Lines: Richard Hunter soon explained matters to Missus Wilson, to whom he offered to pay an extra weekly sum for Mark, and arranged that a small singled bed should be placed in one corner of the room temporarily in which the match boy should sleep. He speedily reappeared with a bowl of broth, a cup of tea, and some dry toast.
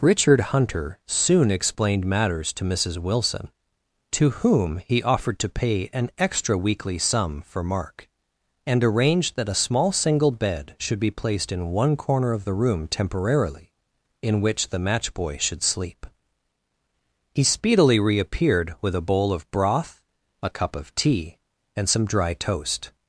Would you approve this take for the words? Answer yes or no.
no